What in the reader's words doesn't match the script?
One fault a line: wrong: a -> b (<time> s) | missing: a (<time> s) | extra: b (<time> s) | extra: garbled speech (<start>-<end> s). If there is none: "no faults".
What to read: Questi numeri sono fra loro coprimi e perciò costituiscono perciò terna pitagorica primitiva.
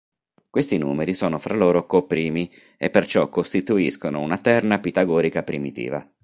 wrong: perciò -> una (4.2 s)